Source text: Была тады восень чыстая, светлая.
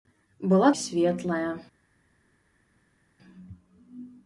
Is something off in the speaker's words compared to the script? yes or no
yes